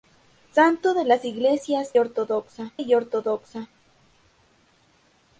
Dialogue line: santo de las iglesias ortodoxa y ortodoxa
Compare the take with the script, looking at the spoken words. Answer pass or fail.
pass